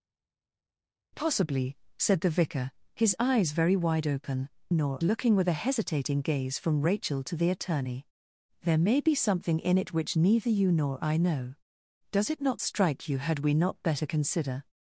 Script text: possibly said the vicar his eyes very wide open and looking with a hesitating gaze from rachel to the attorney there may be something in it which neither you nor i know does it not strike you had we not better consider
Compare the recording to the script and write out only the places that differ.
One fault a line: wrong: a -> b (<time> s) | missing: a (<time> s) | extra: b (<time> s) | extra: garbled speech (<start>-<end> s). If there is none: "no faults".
wrong: and -> nor (4.7 s)